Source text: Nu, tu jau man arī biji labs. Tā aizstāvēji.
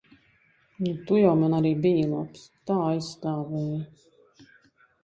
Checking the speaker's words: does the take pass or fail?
pass